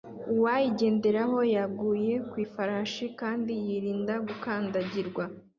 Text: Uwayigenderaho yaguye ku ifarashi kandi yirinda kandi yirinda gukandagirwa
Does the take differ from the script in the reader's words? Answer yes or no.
yes